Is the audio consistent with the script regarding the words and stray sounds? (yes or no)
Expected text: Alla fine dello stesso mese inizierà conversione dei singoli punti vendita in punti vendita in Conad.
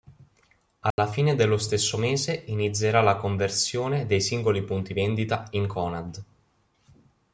no